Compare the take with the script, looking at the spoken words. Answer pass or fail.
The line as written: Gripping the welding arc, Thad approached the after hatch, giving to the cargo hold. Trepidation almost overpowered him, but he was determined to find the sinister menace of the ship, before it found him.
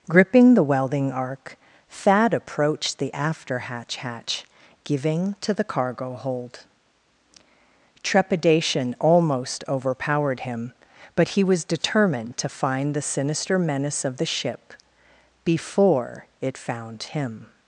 fail